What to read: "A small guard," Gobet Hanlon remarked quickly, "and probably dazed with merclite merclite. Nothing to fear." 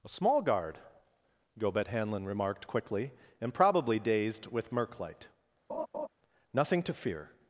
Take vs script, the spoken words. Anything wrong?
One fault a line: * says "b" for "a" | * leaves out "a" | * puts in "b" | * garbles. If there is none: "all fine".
* leaves out "merclite"